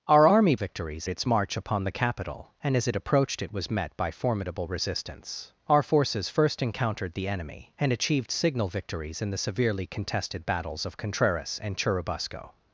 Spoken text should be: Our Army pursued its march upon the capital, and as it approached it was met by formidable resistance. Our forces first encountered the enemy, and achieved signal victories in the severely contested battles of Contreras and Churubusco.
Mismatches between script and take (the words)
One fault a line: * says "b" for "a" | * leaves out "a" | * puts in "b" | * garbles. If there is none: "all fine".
* says "victories" for "pursued"